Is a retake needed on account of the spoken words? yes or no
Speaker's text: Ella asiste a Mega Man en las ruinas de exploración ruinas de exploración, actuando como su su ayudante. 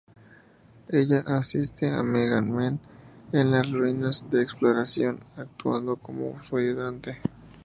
yes